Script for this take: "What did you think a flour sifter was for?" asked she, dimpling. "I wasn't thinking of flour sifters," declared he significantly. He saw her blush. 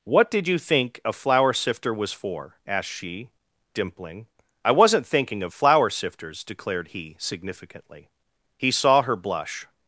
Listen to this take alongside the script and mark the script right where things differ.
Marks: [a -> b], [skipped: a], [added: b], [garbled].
"What did you think a flour sifter was for?" asked she, dimpling. "I wasn't thinking of flour sifters," declared he significantly. He saw her blush.